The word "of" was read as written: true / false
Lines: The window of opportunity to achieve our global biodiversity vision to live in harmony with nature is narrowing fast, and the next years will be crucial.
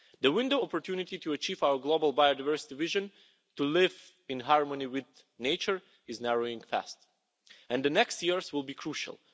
false